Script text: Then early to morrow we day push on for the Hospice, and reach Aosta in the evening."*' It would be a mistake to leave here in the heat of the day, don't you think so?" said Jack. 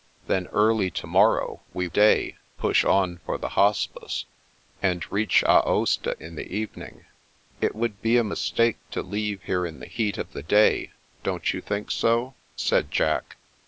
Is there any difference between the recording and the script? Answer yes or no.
no